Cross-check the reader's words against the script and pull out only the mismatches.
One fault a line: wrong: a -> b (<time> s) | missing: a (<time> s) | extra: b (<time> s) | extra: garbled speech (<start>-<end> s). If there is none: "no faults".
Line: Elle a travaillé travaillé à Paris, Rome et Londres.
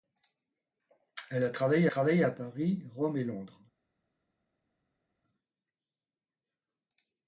no faults